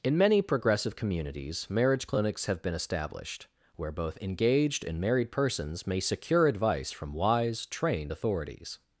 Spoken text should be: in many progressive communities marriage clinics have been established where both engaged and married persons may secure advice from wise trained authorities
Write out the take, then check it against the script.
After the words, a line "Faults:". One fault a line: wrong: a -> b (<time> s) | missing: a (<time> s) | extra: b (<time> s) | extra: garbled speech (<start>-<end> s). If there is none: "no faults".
in many progressive communities marriage clinics have been established where both engaged and married persons may secure advice from wise trained authorities
Faults:
no faults